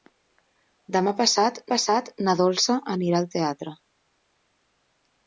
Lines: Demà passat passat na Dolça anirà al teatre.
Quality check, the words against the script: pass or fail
pass